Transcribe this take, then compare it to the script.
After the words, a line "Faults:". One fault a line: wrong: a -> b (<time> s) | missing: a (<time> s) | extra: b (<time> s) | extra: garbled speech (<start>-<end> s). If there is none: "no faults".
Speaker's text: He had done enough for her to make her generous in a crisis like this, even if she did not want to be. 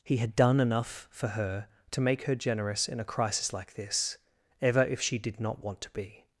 He had done enough for her to make her generous in a crisis like this, ever if she did not want to be.
Faults:
wrong: even -> ever (4.6 s)